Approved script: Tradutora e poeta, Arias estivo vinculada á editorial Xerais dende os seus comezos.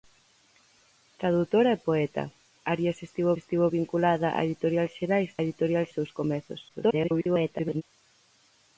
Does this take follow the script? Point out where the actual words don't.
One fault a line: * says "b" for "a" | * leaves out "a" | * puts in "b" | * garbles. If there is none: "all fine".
* puts in "estivo"
* says "editorial" for "dende"
* garbles